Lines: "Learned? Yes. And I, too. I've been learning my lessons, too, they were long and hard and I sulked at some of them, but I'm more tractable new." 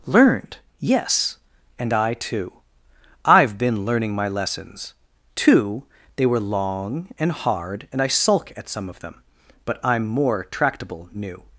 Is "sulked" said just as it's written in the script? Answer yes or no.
no